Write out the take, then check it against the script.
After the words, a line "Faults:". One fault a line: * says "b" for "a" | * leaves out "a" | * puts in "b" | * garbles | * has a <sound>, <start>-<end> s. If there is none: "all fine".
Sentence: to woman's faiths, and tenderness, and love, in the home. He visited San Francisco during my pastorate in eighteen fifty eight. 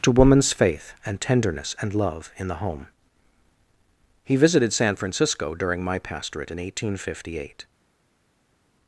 to woman's faith, and tenderness, and love, in the home. He visited San Francisco during my pastorate in eighteen fifty eight.
Faults:
* says "faith" for "faiths"